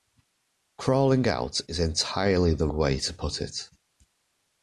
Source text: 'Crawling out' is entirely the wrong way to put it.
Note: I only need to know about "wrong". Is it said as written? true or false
false